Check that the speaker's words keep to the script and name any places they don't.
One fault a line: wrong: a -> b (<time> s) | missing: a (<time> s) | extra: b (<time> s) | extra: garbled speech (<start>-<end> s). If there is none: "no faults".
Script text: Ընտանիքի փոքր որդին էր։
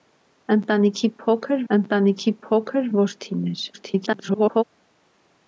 extra: ընտանիքի փոքր (1.7 s)
extra: garbled speech (3.7-4.6 s)